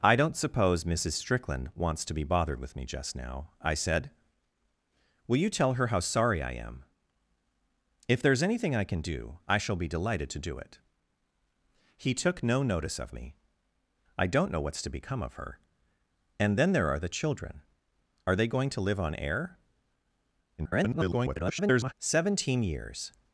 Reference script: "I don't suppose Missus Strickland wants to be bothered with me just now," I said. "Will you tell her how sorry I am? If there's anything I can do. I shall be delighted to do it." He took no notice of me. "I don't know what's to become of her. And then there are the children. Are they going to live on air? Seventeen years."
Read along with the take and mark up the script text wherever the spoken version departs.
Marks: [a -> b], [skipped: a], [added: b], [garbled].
"I don't suppose Missus Strickland wants to be bothered with me just now," I said. "Will you tell her how sorry I am? If there's anything I can do. I shall be delighted to do it." He took no notice of me. "I don't know what's to become of her. And then there are the children. Are they going to live on air? [garbled] Seventeen years."